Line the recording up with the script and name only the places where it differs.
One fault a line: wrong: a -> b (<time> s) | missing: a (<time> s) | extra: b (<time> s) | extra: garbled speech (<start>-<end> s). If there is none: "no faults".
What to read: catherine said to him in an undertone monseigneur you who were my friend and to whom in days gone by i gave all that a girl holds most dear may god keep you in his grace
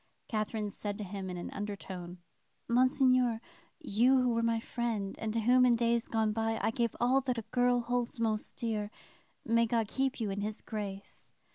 no faults